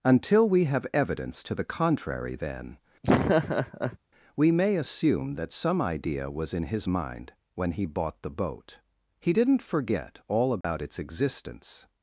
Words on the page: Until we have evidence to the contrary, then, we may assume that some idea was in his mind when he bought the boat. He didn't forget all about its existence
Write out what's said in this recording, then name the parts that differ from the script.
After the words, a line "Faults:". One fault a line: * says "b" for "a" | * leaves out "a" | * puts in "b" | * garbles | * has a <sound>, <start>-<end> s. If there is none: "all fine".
Until we have evidence to the contrary, then, we may assume that some idea was in his mind when he bought the boat. He didn't forget all about its existence
Faults:
* has a laugh, 3.0-4.0 s
* has a dropout, 10.6-10.6 s